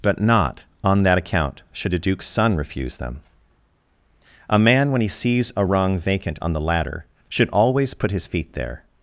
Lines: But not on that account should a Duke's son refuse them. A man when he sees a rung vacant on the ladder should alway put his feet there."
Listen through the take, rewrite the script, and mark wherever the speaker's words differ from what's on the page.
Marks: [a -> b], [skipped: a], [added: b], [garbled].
But not on that account should a Duke's son refuse them. A man when he sees a rung vacant on the ladder should [alway -> always] put his feet there."